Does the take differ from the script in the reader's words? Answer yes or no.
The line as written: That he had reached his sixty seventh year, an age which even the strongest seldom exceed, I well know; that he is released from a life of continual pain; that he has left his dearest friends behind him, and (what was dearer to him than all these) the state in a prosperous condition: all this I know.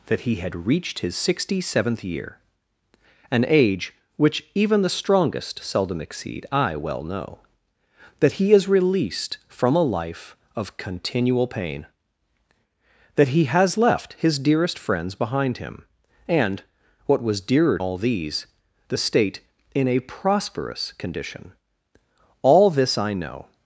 yes